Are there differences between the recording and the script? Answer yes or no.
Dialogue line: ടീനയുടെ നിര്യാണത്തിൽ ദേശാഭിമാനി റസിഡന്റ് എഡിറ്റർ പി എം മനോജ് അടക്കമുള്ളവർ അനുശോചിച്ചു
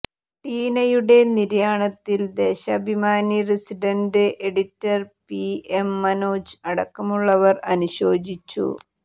no